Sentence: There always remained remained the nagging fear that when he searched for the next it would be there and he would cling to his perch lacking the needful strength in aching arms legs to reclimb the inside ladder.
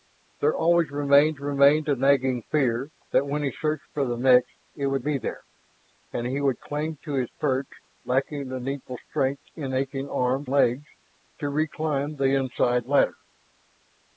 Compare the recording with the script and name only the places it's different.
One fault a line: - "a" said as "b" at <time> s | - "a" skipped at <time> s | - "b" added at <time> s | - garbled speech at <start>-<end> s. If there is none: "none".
none